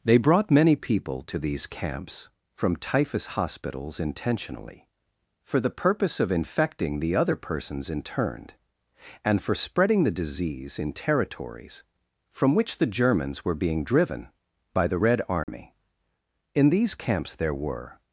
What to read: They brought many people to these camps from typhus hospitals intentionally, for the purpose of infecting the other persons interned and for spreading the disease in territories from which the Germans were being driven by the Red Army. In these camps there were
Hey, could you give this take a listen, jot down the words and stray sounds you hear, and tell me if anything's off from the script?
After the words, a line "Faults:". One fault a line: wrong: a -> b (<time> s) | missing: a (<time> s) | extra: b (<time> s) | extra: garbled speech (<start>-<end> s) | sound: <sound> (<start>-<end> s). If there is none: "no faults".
They brought many people to these camps from typhus hospitals intentionally, for the purpose of infecting the other persons interned and for spreading the disease in territories from which the Germans were being driven by the Red Army. In these camps there were
Faults:
sound: dropout (15.4-15.5 s)